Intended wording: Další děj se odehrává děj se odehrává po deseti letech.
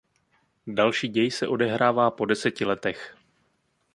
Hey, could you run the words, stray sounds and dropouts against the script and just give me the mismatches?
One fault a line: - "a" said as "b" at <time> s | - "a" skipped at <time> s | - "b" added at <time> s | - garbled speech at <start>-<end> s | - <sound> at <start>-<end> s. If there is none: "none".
- "děj se odehrává" skipped at 2.1 s